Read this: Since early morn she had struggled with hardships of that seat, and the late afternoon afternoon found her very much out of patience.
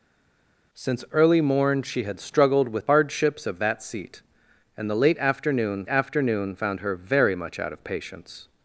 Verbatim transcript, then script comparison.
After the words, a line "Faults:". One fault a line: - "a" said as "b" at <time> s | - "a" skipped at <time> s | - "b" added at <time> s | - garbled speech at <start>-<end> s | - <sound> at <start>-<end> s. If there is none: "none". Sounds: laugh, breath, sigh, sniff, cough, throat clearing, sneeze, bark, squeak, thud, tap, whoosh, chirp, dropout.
Since early morn she had struggled with hardships of that seat, and the late afternoon afternoon found her very much out of patience.
Faults:
none